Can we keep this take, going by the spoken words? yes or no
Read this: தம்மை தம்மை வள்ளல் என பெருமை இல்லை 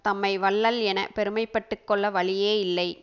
no